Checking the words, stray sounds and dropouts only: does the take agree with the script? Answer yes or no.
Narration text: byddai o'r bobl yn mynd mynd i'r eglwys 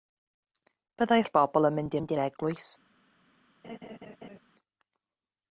no